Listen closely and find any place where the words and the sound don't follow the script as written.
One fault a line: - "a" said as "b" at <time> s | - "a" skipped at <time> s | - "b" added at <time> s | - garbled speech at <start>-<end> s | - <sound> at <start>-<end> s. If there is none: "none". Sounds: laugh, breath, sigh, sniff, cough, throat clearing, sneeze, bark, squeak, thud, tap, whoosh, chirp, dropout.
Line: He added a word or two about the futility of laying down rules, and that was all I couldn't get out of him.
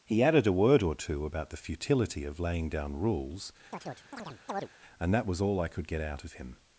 - chirp at 3.7-4.7 s
- "couldn't" said as "could" at 5.7 s